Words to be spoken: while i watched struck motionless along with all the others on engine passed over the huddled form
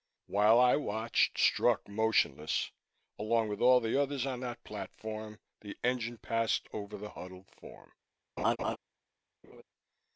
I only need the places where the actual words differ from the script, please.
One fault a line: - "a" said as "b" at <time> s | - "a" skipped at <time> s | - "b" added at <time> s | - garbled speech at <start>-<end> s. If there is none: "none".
- "that platform the" added at 4.4 s